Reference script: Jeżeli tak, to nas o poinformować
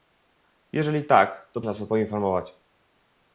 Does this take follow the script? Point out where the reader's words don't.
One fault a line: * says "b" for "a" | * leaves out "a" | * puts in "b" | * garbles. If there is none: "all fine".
all fine